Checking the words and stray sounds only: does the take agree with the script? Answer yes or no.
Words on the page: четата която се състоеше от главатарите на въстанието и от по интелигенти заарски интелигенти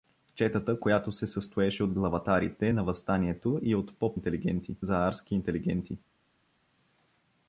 yes